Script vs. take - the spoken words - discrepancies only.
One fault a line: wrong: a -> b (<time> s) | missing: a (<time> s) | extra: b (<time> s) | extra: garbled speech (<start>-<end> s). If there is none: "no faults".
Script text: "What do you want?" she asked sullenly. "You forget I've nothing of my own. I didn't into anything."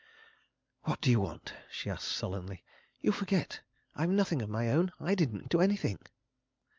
no faults